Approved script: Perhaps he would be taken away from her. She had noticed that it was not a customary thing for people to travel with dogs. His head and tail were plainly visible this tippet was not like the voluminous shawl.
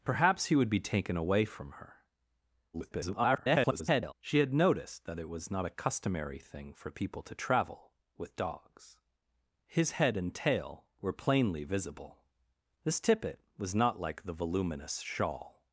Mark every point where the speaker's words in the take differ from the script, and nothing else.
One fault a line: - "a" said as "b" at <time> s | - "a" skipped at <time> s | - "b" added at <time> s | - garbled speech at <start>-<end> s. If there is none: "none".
- garbled speech at 2.7-4.1 s